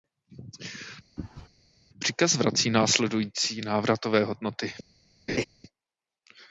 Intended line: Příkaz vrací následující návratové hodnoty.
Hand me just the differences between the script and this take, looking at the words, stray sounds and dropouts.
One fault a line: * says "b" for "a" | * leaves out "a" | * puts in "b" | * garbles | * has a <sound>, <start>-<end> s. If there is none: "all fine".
* has a sneeze, 1.2-1.5 s
* has a laugh, 5.3-5.4 s